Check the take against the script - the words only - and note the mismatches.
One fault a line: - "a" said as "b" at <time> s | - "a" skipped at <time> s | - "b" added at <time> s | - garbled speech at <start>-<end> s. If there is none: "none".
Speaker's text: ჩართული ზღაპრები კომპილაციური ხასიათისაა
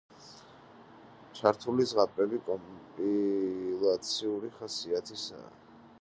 none